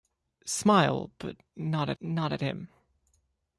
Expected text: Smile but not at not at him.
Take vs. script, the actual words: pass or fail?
pass